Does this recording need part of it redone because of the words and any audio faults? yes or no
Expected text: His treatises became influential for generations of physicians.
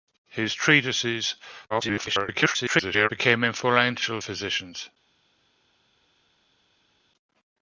yes